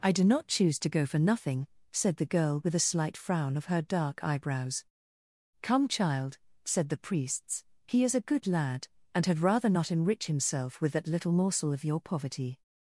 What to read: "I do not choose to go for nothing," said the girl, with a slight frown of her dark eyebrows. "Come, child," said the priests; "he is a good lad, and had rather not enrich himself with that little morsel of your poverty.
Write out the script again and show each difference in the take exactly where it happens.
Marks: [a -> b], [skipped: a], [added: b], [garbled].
"I do not choose to go for nothing," said the girl, with a slight frown of her dark eyebrows. "Come, child," said the priests; "he is a good lad, and had rather not enrich himself with that little morsel of your poverty.